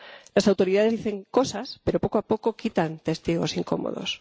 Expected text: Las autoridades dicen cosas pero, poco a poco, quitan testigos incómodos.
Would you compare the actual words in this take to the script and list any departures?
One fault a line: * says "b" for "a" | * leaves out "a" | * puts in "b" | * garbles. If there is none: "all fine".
all fine